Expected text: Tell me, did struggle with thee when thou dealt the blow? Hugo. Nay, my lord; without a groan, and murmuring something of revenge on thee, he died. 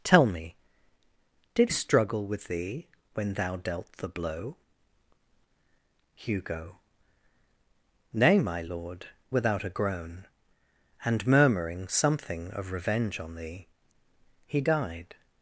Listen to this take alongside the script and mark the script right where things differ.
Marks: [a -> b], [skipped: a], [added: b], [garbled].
Tell me, did struggle with thee when thou dealt the blow? Hugo. Nay, my lord; without a groan, and murmuring something of revenge on thee, he died.